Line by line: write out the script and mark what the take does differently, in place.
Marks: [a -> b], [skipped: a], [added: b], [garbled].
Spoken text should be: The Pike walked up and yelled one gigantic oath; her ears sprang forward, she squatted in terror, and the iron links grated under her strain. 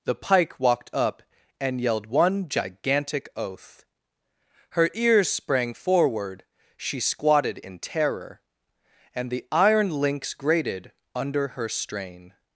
The Pike walked up and yelled one gigantic oath; her ears sprang forward, she squatted in terror, and the iron links grated under her strain.